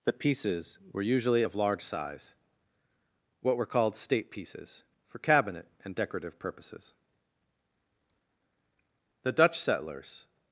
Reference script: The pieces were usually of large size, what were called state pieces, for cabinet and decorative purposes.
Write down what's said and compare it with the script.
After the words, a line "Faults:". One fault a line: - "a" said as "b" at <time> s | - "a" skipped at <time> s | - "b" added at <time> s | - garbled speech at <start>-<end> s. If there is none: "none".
The pieces were usually of large size, what were called state pieces, for cabinet and decorative purposes. The Dutch settlers
Faults:
- "The Dutch settlers" added at 9.2 s